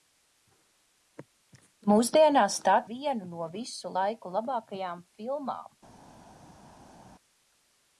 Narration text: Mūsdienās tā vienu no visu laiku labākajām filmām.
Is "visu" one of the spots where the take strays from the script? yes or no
no